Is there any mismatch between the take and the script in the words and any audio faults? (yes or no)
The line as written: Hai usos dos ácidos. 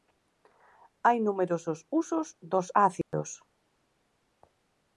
yes